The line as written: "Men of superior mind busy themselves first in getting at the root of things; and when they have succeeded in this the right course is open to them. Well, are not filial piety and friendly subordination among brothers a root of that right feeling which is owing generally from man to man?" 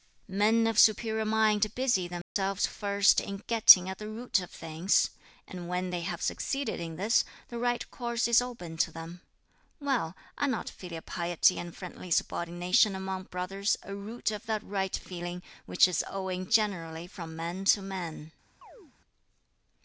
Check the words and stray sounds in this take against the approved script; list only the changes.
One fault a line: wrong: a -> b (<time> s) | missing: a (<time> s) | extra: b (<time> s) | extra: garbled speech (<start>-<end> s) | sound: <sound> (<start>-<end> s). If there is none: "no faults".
sound: dropout (2.2-2.4 s)
sound: chirp (18.6-18.9 s)